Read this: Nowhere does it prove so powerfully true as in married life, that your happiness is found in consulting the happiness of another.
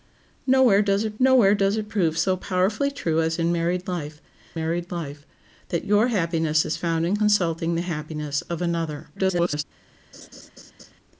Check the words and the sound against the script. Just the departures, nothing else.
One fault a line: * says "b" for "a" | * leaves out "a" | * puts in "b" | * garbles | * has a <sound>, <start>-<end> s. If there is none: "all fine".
* puts in "nowhere does it"
* puts in "married life"
* garbles
* has a laugh, 10.1-10.9 s